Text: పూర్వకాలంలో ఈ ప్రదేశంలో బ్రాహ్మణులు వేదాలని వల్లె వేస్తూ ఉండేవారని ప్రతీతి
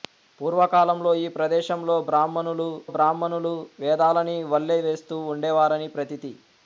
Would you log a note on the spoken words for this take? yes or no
yes